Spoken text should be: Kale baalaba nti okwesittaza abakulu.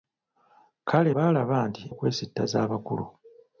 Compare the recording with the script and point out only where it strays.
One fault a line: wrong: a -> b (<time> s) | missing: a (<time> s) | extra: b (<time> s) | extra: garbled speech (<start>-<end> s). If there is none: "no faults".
no faults